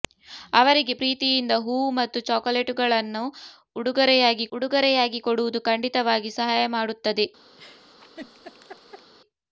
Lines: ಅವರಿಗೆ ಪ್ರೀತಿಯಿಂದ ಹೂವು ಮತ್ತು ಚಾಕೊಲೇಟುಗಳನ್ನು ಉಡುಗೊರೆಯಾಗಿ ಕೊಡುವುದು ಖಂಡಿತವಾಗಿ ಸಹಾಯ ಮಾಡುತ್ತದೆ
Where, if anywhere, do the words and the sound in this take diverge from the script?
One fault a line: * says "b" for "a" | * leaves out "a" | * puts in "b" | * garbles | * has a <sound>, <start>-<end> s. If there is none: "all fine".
* puts in "ಉಡುಗೊರೆಯಾಗಿ"
* has a laugh, 7.6-9.1 s